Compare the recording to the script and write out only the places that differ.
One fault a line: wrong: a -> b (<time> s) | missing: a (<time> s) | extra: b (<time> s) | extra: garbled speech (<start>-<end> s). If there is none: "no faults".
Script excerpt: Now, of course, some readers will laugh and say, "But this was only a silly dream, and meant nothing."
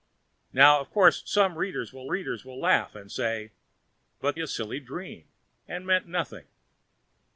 extra: readers will (2.1 s)
missing: this was only (4.4 s)